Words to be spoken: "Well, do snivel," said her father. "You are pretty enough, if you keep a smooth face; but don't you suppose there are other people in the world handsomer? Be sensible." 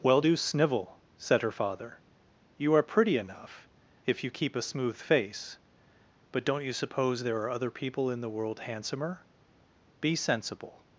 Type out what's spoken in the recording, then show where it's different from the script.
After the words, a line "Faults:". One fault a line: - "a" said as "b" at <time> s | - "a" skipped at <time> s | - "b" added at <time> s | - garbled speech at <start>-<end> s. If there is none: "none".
"Well, do snivel," said her father. "You are pretty enough, if you keep a smooth face; but don't you suppose there are other people in the world handsomer? Be sensible."
Faults:
none